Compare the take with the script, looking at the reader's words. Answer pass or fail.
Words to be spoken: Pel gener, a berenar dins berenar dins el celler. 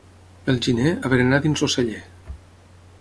fail